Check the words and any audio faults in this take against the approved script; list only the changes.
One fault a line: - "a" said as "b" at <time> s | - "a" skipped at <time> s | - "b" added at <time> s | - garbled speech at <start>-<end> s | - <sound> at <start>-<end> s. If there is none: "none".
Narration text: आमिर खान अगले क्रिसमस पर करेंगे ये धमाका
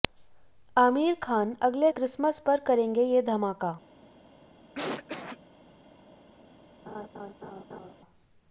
- cough at 4.7-5.4 s
- laugh at 6.9-7.9 s